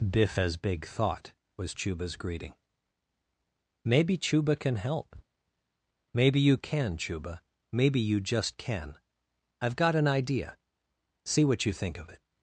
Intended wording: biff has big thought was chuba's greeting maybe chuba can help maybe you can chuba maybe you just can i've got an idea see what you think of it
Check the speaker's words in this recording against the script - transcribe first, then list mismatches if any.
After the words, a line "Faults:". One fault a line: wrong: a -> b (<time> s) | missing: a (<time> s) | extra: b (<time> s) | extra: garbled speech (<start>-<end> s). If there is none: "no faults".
biff has big thought was chuba's greeting maybe chuba can help maybe you can chuba maybe you just can i've got an idea see what you think of it
Faults:
no faults